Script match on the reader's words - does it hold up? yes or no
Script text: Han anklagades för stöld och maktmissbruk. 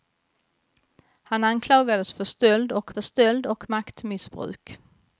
no